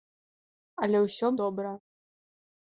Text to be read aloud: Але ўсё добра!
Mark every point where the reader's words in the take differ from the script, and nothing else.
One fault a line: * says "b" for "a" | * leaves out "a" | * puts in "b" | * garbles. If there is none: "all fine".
all fine